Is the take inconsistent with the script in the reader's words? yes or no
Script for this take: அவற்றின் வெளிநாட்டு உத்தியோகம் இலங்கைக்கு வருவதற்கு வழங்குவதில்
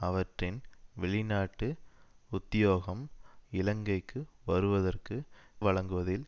no